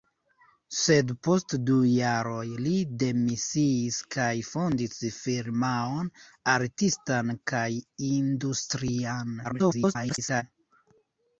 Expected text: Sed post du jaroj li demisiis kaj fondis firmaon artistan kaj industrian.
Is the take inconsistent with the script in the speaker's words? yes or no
yes